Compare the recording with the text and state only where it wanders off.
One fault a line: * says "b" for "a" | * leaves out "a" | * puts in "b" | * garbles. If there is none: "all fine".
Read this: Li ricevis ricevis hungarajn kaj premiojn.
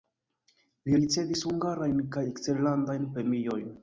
* leaves out "ricevis"
* puts in "eksterlandajn"